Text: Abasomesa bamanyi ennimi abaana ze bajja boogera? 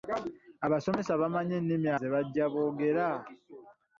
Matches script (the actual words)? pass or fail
fail